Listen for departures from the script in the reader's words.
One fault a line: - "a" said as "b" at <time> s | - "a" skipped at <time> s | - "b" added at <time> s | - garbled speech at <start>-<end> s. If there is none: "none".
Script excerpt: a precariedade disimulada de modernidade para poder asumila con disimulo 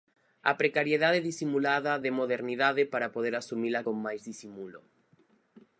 - "máis" added at 4.1 s